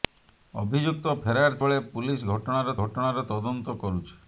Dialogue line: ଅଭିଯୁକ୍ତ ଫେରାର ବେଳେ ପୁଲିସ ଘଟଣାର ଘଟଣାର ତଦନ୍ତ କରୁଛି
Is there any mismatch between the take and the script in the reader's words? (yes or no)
no